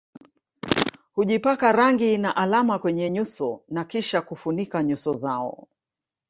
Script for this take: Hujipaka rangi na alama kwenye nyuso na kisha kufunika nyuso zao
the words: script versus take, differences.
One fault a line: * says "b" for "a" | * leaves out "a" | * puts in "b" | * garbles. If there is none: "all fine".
all fine